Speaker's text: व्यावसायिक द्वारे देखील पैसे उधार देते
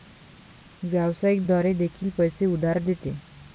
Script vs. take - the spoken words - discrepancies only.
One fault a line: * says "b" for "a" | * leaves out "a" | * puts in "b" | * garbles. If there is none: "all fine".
all fine